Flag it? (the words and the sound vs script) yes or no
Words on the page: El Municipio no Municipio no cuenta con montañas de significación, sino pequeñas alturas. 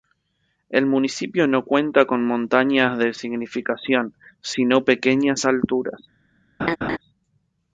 yes